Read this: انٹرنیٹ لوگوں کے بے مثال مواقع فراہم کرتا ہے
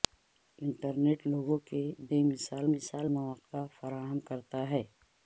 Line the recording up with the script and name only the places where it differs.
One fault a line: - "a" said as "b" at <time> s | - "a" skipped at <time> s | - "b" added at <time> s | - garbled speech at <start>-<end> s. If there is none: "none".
- "مثال" added at 2.7 s